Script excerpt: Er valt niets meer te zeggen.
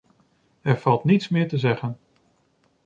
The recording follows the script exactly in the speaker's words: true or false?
true